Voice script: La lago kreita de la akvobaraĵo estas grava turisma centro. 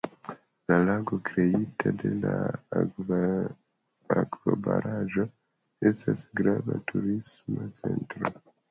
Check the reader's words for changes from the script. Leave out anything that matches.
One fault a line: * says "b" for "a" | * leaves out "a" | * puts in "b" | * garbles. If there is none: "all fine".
all fine